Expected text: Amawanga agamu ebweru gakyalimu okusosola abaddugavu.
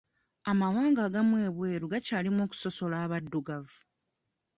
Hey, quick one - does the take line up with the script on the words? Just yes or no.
yes